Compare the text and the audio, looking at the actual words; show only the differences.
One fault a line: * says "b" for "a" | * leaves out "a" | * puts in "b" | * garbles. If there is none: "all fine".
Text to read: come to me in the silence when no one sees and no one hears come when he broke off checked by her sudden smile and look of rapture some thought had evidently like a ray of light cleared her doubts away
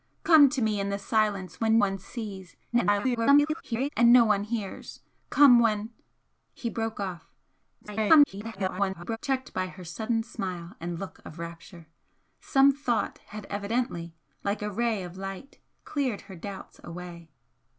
* leaves out "no"
* garbles
* garbles